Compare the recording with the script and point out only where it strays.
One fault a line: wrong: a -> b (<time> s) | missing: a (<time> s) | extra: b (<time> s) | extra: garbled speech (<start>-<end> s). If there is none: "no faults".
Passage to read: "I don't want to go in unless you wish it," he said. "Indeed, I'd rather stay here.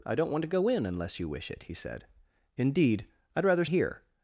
missing: stay (3.6 s)